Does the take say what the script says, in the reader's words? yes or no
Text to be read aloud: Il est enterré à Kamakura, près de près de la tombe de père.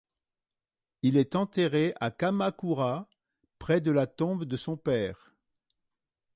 no